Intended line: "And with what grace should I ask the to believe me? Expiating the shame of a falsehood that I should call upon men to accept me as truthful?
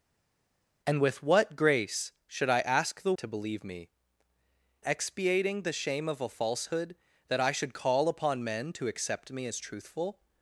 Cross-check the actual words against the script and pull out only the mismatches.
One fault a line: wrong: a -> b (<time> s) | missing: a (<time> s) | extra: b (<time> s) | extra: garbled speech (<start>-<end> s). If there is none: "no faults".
no faults